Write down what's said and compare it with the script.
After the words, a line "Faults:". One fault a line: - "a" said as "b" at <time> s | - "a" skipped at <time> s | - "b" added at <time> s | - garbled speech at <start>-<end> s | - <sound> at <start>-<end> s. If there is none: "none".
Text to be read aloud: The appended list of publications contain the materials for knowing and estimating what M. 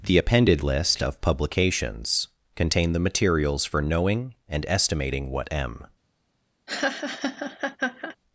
The appended list of publications contain the materials for knowing and estimating what M.
Faults:
- laugh at 6.7-8.2 s